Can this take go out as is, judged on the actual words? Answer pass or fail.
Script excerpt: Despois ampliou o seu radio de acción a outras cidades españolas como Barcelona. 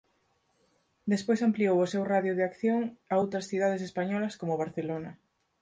pass